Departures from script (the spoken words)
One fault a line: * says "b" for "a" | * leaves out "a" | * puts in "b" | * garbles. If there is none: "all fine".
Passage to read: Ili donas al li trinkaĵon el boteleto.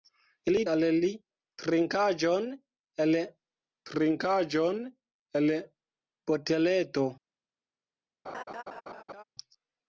* leaves out "donas"
* puts in "trinkaĵon el"